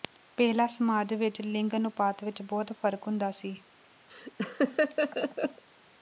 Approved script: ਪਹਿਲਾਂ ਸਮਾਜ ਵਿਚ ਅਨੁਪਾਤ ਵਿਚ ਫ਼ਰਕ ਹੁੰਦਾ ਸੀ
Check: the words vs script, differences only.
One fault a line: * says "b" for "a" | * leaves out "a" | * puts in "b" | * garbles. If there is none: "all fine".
* puts in "ਲਿੰਗ"
* puts in "ਬਹੁਤ"